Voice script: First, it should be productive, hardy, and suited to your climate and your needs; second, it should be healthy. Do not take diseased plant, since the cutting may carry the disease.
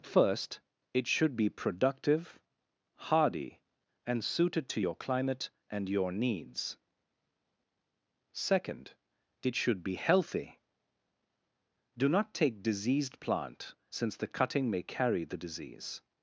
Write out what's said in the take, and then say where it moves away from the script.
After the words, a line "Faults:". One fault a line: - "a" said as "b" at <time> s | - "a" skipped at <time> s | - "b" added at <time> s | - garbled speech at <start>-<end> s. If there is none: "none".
First, it should be productive, hardy, and suited to your climate and your needs; second, it should be healthy. Do not take diseased plant, since the cutting may carry the disease.
Faults:
none